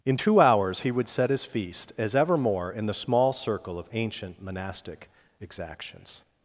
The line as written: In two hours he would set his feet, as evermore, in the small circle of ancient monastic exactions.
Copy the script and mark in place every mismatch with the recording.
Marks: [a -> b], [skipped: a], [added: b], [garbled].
In two hours he would set his [feet, -> feast] as evermore, in the small circle of ancient monastic exactions.